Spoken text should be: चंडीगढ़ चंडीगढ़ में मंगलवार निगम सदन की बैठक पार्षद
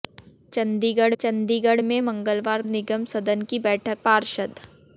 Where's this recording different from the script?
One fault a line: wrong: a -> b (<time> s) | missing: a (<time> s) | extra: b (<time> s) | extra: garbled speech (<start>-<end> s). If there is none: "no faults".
no faults